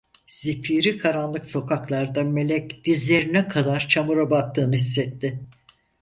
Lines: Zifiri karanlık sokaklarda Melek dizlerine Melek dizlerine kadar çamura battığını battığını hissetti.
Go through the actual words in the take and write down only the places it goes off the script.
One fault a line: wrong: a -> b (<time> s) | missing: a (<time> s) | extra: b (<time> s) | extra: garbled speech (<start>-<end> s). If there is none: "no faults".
missing: Melek dizlerine (3.5 s)
missing: battığını (4.8 s)